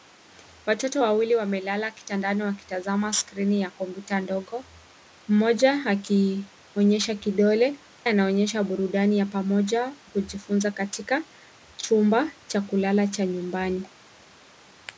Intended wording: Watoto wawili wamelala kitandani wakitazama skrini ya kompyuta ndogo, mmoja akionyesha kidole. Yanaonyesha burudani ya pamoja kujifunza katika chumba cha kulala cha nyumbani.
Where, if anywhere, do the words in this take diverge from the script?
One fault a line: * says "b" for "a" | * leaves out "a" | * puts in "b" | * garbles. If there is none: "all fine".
all fine